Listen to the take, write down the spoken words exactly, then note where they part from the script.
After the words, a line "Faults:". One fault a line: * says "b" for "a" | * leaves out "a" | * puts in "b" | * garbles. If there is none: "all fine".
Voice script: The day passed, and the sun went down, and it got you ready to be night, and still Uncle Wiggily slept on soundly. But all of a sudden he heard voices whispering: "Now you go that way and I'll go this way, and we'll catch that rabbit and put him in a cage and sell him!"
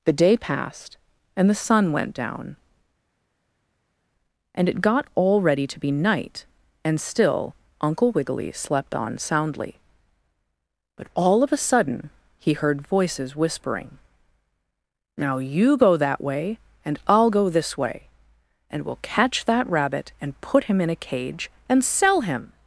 The day passed, and the sun went down, and it got all ready to be night, and still Uncle Wiggily slept on soundly. But all of a sudden he heard voices whispering: "Now you go that way and I'll go this way, and we'll catch that rabbit and put him in a cage and sell him!"
Faults:
* says "all" for "you"